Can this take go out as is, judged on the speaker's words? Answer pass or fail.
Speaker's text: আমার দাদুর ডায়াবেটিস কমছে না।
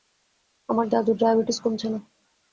pass